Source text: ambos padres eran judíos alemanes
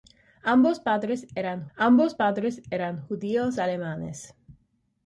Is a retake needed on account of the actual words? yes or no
yes